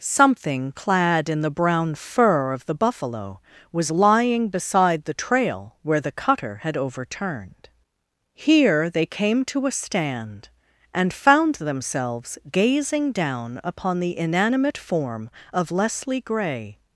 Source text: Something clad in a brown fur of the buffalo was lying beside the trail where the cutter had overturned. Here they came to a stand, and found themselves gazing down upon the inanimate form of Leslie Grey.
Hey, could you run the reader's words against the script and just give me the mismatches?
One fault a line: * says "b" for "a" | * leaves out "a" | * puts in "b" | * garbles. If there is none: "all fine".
* says "the" for "a"